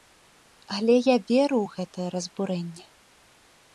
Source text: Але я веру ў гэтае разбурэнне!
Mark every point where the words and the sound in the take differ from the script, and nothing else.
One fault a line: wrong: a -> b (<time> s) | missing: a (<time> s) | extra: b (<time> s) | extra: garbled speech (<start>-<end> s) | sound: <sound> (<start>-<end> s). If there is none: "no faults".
no faults